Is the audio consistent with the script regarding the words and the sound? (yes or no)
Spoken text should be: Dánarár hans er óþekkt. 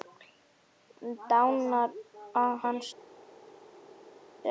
yes